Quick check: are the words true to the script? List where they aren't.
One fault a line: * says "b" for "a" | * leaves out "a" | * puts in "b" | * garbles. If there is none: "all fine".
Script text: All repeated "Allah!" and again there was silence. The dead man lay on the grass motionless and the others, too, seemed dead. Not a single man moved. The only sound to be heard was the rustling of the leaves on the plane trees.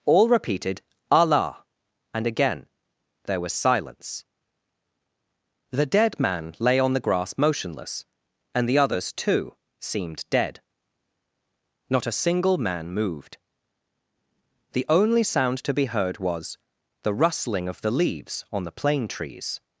all fine